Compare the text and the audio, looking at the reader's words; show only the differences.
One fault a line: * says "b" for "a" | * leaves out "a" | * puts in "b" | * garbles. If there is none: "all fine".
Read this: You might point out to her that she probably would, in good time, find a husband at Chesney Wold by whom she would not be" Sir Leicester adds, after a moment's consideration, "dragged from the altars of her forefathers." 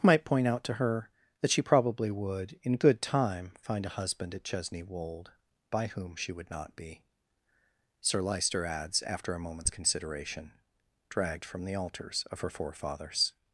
* leaves out "You"